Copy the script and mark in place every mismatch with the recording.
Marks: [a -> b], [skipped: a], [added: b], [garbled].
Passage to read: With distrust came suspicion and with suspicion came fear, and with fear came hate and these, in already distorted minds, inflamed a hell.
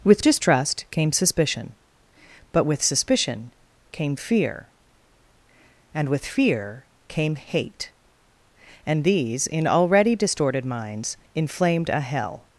With distrust came suspicion [and -> but] with suspicion came fear, and with fear came hate and these, in already distorted minds, inflamed a hell.